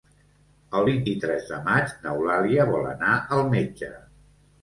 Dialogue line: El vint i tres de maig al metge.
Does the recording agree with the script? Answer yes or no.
no